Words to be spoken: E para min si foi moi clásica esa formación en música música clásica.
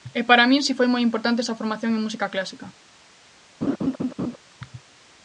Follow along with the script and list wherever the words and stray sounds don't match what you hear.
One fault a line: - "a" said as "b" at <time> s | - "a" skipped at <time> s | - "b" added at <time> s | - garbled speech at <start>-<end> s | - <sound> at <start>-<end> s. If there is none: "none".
- "clásica" said as "importante" at 1.1 s
- "música" skipped at 2.3 s
- laugh at 3.6-4.4 s